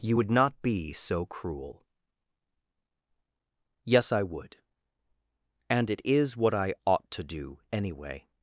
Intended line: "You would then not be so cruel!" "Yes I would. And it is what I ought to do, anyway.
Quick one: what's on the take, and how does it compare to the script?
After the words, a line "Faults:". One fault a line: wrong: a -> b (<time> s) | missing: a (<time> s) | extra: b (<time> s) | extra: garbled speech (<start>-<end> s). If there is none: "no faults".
"You would not be so cruel!" "Yes I would. And it is what I ought to do, anyway.
Faults:
missing: then (0.3 s)